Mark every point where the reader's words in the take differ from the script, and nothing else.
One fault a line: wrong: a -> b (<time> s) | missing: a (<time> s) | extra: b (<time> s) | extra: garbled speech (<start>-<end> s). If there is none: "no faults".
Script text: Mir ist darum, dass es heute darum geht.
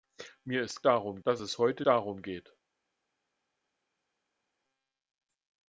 no faults